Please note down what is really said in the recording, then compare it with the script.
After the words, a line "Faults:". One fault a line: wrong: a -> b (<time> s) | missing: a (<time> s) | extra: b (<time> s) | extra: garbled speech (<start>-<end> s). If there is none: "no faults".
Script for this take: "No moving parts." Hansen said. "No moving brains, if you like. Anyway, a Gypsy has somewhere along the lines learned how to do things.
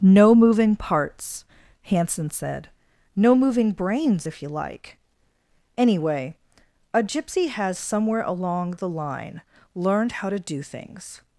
"No moving parts." Hansen said. "No moving brains, if you like. Anyway, a Gypsy has somewhere along the line learned how to do things.
Faults:
wrong: lines -> line (8.9 s)